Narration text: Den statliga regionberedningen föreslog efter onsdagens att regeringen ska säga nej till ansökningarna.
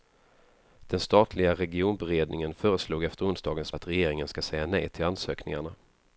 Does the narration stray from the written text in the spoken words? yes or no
no